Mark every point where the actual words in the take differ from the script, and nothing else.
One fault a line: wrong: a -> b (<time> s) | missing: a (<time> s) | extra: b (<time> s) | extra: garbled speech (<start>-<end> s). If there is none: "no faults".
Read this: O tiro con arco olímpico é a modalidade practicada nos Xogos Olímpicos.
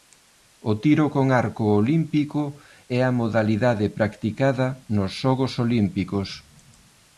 no faults